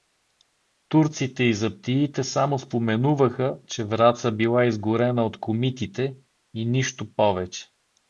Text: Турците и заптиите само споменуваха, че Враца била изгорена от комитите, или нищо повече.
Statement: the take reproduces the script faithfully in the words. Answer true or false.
false